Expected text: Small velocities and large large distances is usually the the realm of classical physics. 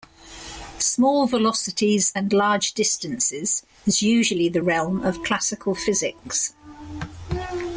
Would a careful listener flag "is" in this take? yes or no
no